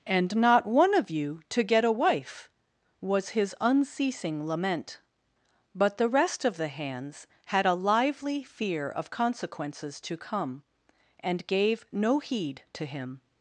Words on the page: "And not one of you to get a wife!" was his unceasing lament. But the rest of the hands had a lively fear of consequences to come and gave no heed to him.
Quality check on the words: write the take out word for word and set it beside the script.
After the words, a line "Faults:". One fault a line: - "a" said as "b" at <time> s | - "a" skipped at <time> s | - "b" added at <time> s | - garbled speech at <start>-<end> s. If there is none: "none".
"And not one of you to get a wife!" was his unceasing lament. But the rest of the hands had a lively fear of consequences to come and gave no heed to him.
Faults:
none